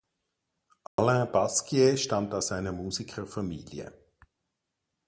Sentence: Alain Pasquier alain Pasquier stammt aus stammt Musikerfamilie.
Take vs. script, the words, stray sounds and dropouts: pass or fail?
fail